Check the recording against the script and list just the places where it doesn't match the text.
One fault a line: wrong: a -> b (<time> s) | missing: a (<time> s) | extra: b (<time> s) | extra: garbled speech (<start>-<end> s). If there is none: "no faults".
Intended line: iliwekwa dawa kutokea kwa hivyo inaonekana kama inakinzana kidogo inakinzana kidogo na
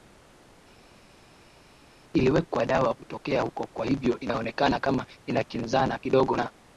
extra: huko (3.4 s)
missing: inakinzana kidogo (6.4 s)